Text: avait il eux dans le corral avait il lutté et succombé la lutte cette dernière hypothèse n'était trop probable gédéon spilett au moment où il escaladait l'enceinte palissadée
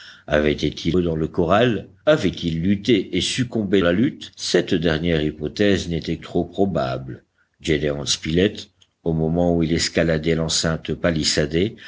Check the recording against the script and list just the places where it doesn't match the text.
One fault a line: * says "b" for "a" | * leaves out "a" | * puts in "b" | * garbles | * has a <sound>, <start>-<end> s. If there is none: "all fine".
all fine